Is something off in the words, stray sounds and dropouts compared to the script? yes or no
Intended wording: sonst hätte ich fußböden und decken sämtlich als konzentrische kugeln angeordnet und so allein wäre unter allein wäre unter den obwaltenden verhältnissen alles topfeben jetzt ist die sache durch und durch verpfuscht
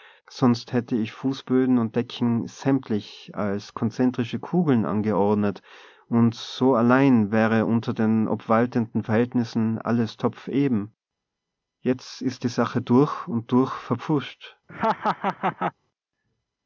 yes